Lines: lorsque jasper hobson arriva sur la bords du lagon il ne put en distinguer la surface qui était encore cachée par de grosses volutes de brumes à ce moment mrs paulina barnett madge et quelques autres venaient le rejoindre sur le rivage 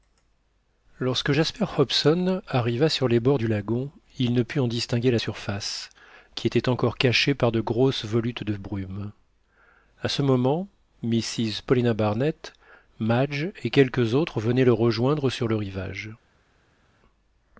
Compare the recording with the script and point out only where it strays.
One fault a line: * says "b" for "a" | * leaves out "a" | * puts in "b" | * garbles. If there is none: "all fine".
* says "les" for "la"